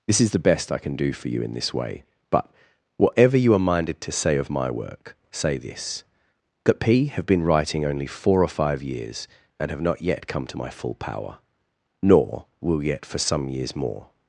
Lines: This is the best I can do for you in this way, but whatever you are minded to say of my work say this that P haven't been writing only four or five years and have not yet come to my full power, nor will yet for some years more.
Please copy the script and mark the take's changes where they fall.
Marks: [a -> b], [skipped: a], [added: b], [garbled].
This is the best I can do for you in this way, but whatever you are minded to say of my work say this that P [haven't -> have] been writing only four or five years and have not yet come to my full power, nor will yet for some years more.